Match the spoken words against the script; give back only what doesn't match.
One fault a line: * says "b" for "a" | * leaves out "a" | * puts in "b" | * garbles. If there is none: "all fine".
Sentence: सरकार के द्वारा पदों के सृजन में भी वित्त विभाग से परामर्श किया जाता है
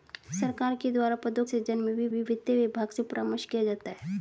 * leaves out "के"
* puts in "भी"